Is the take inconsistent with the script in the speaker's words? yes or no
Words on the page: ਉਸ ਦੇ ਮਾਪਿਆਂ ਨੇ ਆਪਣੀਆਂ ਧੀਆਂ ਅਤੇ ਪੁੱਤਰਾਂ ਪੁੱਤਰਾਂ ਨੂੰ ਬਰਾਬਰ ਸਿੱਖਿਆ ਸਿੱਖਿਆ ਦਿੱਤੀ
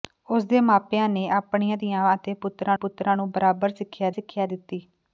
no